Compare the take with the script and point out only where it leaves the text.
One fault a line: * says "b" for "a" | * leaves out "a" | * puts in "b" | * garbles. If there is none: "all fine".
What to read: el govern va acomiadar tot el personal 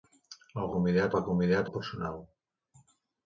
* says "acomiadar" for "govern"
* leaves out "tot"